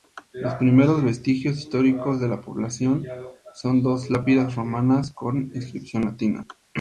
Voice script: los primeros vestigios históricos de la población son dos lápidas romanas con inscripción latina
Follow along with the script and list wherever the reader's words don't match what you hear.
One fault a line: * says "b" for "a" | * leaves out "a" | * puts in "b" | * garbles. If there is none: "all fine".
all fine